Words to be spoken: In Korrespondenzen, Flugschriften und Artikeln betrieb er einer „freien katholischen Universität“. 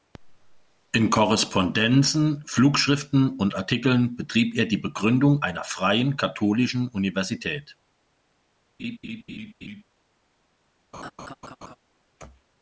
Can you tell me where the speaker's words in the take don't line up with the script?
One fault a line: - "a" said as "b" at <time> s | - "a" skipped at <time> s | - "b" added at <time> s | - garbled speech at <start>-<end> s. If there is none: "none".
- "die Begründung" added at 4.7 s